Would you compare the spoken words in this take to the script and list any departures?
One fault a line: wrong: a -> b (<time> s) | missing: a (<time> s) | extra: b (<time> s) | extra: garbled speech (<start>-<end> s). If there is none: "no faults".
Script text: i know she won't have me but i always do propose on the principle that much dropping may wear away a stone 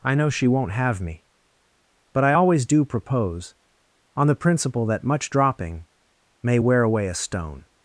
no faults